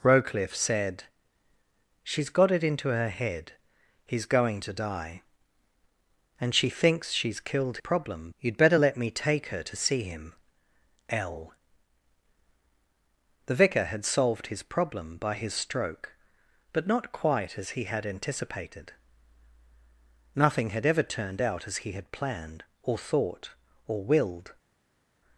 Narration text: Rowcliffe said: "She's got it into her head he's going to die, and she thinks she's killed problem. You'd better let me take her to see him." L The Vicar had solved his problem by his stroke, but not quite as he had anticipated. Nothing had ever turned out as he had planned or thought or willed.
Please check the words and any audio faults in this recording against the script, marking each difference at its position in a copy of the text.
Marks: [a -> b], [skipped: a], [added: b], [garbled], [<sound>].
Rowcliffe said: "She's got it into her head he's going to die, and she thinks she's killed problem. You'd better let me take her to see him." L The Vicar had solved his problem by his stroke, but not quite as he had anticipated. Nothing had ever turned out as he had planned or thought or willed.